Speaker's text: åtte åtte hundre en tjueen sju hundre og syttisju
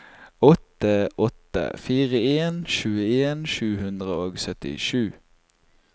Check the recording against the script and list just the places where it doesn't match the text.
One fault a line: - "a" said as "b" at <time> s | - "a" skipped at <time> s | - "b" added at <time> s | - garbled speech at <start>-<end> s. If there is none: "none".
- "hundre" said as "fire" at 1.8 s